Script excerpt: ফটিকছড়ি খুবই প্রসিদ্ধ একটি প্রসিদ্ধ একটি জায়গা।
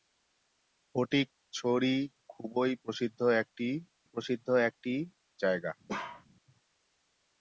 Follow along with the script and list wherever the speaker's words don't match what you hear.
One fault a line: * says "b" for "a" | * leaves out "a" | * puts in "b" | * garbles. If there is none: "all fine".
all fine